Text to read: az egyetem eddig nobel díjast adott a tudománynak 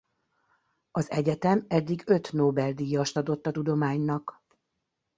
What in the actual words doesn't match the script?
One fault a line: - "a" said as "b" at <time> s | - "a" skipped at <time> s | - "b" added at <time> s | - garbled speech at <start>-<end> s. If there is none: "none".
- "öt" added at 2.0 s